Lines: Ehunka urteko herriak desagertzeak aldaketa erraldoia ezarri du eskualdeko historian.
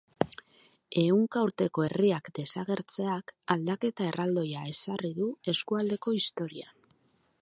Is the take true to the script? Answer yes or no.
yes